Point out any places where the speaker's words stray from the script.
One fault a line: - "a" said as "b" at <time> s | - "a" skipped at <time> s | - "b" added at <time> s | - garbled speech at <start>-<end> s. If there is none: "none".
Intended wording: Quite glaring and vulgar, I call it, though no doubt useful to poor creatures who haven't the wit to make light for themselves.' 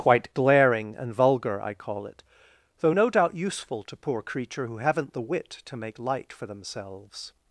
- "creatures" said as "creature" at 4.2 s